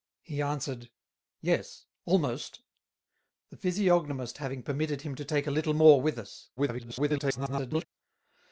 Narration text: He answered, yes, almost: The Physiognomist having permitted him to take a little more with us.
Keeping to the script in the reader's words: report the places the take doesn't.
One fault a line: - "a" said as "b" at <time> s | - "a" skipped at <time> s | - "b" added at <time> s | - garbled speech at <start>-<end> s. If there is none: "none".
- garbled speech at 6.6-7.9 s